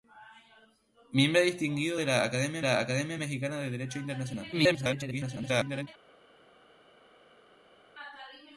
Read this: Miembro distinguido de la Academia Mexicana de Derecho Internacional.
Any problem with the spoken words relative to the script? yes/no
yes